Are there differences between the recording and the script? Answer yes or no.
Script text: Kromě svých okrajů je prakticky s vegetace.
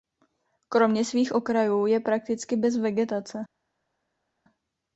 yes